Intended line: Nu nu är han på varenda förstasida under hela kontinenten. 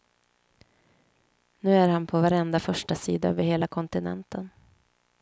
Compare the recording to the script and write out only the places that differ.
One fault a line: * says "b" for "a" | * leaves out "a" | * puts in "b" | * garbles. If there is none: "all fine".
* leaves out "nu"
* says "över" for "under"